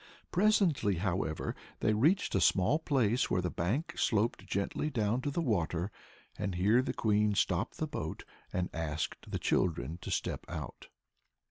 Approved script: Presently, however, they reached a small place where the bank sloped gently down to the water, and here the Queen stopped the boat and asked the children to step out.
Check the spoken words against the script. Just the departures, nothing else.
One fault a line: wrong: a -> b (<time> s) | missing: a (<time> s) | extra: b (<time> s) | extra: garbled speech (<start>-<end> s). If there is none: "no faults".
no faults